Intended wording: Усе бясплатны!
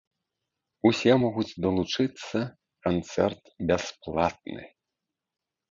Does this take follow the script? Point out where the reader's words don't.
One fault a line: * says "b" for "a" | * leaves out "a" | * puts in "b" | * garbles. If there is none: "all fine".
* puts in "могуць далучыцца канцэрт"